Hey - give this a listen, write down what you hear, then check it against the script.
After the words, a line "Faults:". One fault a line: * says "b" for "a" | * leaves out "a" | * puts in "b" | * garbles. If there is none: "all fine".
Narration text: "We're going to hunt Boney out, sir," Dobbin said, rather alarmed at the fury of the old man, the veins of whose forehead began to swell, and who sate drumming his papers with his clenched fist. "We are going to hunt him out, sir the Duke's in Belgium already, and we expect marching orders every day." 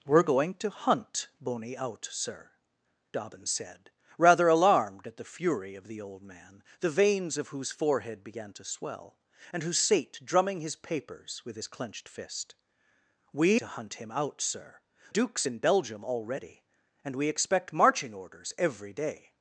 "We're going to hunt Boney out, sir," Dobbin said, rather alarmed at the fury of the old man, the veins of whose forehead began to swell, and who sate drumming his papers with his clenched fist. "We to hunt him out, sir Duke's in Belgium already, and we expect marching orders every day."
Faults:
* leaves out "are going"
* leaves out "the"